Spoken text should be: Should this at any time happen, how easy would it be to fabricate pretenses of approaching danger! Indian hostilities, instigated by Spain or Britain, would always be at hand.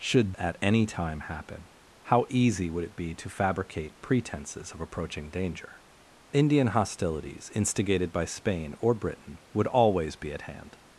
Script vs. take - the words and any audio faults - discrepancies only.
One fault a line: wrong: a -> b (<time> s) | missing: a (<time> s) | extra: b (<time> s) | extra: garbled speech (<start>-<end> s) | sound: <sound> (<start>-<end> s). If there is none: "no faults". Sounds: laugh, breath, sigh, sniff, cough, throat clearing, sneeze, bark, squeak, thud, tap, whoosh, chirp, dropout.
missing: this (0.3 s)